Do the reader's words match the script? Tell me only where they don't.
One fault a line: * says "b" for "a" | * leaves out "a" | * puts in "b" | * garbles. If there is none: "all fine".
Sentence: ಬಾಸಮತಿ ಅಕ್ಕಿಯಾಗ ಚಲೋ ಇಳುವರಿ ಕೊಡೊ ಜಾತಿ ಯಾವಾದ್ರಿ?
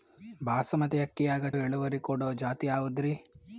* leaves out "ಚಲೋ"